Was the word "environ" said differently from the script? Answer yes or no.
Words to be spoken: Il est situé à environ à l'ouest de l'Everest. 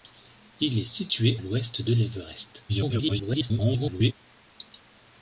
yes